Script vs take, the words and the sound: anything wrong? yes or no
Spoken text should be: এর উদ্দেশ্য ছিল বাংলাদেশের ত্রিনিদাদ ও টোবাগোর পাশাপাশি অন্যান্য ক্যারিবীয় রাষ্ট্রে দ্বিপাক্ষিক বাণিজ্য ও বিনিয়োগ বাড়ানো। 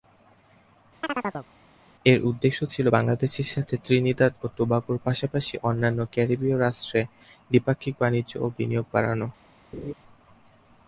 yes